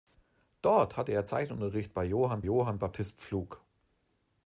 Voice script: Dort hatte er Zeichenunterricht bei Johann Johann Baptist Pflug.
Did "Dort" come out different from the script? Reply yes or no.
no